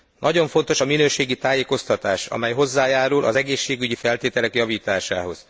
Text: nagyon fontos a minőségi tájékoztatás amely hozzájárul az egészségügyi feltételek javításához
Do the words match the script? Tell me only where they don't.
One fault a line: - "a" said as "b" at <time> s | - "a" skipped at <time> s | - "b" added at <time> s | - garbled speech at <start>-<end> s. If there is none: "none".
none